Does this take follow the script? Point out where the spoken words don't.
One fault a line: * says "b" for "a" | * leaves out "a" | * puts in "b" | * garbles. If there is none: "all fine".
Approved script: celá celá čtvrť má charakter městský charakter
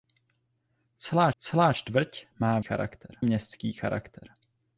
all fine